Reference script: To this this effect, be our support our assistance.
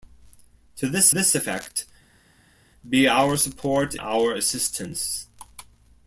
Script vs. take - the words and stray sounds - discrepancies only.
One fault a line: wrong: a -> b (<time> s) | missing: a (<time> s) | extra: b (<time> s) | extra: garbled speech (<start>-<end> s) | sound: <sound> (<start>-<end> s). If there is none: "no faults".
no faults